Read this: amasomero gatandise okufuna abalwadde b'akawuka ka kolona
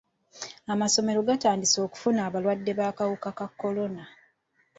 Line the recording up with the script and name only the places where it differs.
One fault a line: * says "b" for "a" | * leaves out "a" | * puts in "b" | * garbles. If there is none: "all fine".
all fine